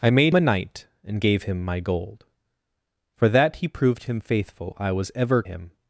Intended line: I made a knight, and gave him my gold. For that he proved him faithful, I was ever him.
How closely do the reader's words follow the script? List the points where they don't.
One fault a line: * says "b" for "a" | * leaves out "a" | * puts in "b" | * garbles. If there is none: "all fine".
all fine